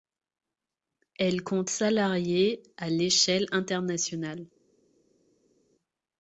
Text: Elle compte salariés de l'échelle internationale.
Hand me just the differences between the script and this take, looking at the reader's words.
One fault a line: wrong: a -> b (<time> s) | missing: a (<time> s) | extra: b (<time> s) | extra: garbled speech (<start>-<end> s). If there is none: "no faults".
wrong: de -> à (2.8 s)